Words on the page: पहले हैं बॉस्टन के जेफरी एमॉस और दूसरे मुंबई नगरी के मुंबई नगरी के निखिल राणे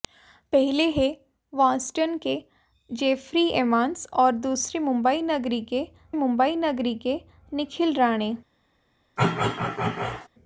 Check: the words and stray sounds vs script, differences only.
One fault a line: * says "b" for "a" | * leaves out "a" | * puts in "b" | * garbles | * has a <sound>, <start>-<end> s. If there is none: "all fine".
* has a throat clearing, 9.2-10.3 s